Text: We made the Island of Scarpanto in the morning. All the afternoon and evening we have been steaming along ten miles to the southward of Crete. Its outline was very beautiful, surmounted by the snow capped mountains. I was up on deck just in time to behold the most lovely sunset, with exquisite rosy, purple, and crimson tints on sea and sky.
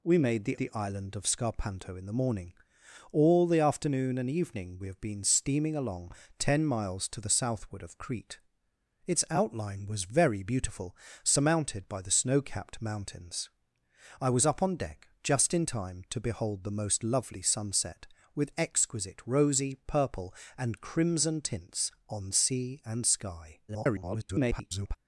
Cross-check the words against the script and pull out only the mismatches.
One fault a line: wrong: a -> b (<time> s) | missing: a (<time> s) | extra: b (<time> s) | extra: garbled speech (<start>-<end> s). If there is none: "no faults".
extra: the (0.6 s)
extra: garbled speech (23.7-25.0 s)